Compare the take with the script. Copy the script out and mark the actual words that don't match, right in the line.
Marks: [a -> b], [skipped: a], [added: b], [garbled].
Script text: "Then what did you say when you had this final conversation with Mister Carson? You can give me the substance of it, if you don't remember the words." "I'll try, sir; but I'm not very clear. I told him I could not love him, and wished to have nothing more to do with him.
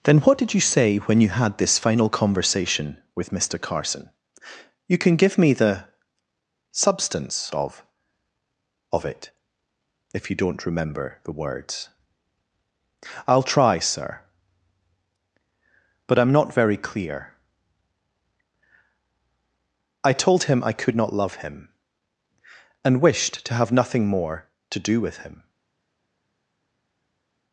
"Then what did you say when you had this final conversation with Mister Carson? You can give me the substance of [added: of] it, if you don't remember the words." "I'll try, sir; but I'm not very clear. I told him I could not love him, and wished to have nothing more to do with him.